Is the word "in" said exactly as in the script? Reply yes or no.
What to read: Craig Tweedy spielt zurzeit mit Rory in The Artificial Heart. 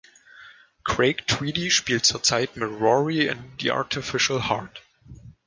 yes